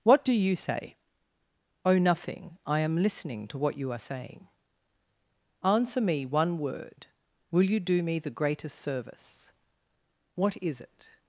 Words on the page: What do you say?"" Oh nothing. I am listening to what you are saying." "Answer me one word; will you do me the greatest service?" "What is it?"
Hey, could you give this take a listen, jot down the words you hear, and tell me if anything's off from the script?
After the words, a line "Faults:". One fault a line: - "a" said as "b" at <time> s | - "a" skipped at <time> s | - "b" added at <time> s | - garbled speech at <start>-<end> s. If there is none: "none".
What do you say?"" Oh nothing. I am listening to what you are saying." "Answer me one word; will you do me the greatest service?" "What is it?"
Faults:
none